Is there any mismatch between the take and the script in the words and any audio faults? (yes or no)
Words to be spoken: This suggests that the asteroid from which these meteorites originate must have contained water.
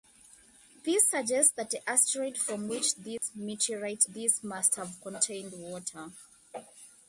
yes